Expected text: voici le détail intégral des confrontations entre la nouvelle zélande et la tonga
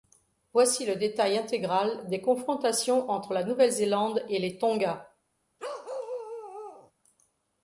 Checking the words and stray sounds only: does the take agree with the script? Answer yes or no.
no